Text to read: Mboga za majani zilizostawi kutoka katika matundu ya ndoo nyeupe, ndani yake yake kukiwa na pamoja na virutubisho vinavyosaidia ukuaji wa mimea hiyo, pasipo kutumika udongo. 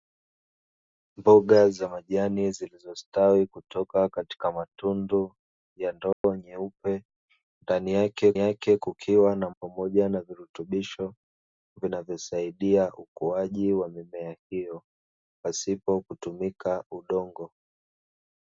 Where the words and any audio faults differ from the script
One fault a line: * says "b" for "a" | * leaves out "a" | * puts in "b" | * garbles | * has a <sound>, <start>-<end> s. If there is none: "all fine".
* has a dropout, 6.1-6.2 s